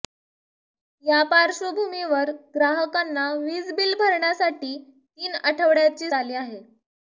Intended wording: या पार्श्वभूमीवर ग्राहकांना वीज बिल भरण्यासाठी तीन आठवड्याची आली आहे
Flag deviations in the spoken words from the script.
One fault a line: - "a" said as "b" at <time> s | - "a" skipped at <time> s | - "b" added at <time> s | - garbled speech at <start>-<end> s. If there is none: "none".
none